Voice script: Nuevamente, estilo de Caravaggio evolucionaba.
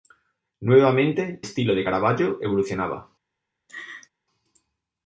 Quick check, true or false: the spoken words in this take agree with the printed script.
true